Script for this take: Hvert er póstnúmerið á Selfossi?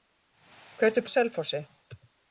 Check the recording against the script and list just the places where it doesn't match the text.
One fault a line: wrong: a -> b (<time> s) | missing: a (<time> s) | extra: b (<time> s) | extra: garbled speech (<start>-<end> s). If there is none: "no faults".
missing: póstnúmerið (1.1 s)